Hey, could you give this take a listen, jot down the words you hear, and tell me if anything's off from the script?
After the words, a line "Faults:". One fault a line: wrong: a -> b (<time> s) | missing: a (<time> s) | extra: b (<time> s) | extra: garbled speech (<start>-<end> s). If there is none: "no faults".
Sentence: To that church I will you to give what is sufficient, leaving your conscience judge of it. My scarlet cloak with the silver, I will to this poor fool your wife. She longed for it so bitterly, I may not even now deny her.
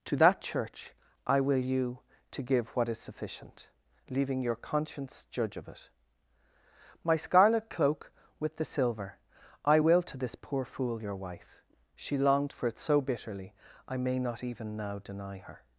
To that church I will you to give what is sufficient, leaving your conscience judge of it. My scarlet cloak with the silver, I will to this poor fool your wife. She longed for it so bitterly, I may not even now deny her.
Faults:
no faults